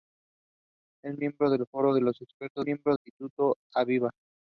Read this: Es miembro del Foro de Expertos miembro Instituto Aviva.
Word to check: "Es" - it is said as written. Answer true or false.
true